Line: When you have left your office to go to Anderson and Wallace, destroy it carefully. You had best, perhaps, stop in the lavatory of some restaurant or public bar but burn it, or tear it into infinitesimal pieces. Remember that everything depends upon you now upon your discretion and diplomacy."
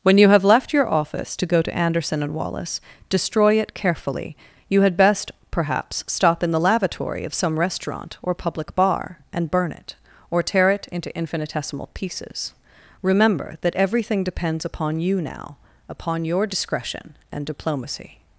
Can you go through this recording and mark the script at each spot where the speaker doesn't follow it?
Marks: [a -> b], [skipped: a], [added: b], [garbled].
When you have left your office to go to Anderson and Wallace, destroy it carefully. You had best, perhaps, stop in the lavatory of some restaurant or public bar [but -> and] burn it, or tear it into infinitesimal pieces. Remember that everything depends upon you now upon your discretion and diplomacy."